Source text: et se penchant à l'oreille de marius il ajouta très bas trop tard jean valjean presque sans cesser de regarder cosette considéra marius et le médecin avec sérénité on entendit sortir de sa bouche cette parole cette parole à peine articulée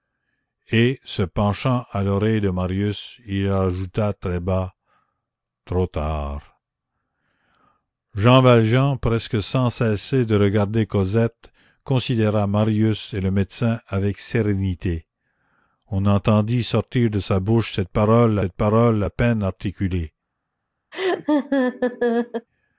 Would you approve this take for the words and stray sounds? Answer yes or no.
no